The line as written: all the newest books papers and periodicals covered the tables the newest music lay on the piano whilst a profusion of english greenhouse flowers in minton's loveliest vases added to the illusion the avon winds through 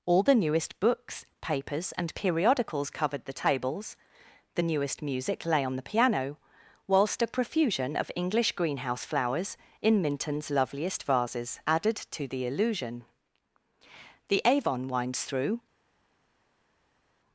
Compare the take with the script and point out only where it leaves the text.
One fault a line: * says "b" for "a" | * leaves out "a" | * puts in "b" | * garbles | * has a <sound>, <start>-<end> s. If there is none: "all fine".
all fine